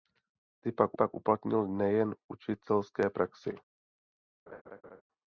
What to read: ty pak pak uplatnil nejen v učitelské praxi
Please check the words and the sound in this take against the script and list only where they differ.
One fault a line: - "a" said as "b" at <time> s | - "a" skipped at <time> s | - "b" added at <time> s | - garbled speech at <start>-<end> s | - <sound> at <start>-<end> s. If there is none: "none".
- laugh at 4.5-5.0 s